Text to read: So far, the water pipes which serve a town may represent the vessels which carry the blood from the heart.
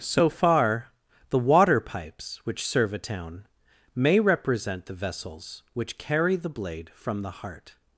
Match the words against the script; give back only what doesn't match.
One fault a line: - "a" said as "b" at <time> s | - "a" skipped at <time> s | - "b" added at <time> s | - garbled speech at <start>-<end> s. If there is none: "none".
- "blood" said as "blade" at 6.5 s